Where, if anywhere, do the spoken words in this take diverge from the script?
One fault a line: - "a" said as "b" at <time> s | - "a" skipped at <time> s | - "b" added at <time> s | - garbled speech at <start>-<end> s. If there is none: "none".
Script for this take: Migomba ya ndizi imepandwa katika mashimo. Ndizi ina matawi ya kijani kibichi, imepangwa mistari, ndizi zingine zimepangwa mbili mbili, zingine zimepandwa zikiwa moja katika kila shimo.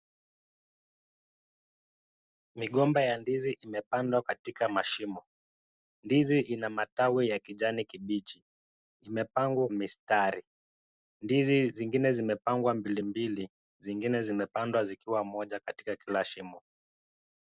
none